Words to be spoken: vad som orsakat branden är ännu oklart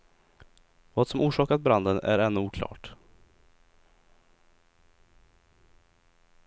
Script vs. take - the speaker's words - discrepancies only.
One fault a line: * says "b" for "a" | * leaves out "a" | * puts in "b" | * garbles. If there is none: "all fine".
all fine